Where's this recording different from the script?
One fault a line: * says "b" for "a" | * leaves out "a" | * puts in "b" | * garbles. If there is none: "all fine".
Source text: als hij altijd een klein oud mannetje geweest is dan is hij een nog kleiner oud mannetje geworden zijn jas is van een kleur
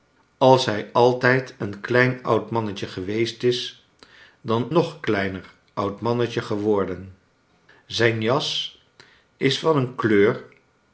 * leaves out "is hij een"